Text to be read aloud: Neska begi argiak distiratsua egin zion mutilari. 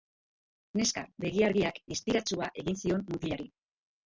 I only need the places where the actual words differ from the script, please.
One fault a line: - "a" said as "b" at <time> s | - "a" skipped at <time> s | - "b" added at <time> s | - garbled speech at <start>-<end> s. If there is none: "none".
none